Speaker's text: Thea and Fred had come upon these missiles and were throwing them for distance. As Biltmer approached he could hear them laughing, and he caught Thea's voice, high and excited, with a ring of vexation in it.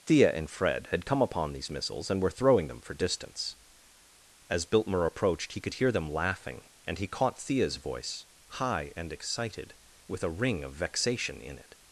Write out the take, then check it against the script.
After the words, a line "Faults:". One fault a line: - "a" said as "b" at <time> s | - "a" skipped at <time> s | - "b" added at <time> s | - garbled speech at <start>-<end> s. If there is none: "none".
Thea and Fred had come upon these missiles and were throwing them for distance. As Biltmer approached he could hear them laughing, and he caught Thea's voice, high and excited, with a ring of vexation in it.
Faults:
none